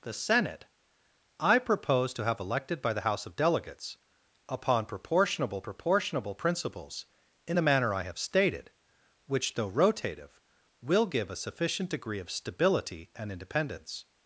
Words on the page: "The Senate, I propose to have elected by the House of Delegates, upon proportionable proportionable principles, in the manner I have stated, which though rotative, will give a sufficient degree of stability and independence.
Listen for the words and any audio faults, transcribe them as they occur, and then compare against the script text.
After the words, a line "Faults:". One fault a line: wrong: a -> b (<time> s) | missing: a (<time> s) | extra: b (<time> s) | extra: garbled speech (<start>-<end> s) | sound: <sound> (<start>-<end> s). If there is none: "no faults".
"The Senate, I propose to have elected by the House of Delegates, upon proportionable proportionable principles, in the manner I have stated, which though rotative, will give a sufficient degree of stability and independence.
Faults:
no faults